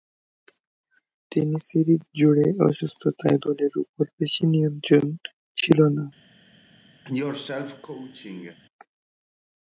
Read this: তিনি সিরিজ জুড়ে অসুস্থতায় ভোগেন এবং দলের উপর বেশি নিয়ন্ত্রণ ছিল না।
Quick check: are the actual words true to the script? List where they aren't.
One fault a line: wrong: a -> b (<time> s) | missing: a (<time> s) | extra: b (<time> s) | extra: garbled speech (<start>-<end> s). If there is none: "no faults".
missing: ভোগেন এবং (3.4 s)